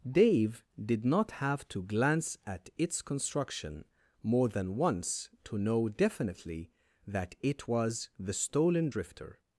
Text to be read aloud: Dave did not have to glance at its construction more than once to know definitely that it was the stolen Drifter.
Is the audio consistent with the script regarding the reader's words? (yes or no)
yes